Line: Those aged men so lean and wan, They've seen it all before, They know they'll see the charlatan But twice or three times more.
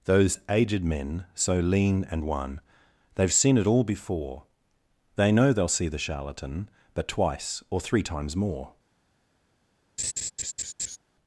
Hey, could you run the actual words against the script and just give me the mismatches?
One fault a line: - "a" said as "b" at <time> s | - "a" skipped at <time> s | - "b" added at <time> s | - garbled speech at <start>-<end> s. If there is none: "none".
none